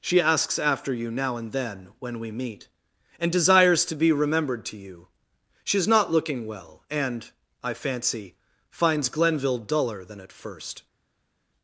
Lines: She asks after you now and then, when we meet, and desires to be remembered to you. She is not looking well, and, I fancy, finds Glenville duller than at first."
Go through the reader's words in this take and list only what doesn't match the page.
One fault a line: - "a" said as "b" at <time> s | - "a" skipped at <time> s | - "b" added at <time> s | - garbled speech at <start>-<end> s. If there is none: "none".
none